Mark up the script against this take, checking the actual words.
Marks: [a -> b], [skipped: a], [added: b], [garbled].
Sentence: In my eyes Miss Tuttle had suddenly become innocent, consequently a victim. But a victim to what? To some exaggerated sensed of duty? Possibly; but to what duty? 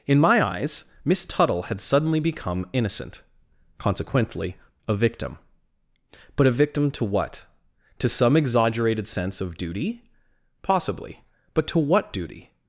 In my eyes Miss Tuttle had suddenly become innocent, consequently a victim. But a victim to what? To some exaggerated [sensed -> sense] of duty? Possibly; but to what duty?